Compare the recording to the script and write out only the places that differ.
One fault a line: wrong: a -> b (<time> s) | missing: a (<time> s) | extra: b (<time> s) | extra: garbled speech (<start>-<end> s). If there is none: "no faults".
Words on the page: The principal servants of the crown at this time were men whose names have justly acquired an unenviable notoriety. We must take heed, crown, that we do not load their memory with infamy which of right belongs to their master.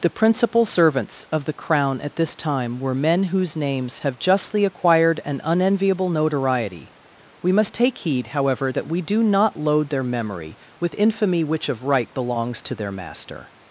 wrong: crown -> however (8.3 s)